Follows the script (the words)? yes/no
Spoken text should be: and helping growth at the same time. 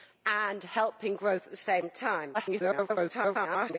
no